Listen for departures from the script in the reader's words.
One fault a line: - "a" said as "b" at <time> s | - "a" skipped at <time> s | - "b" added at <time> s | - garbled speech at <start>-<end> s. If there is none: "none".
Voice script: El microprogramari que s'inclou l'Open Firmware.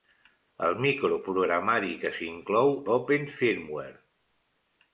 none